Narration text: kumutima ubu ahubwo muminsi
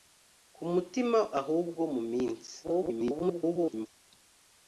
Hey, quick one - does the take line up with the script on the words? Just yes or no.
no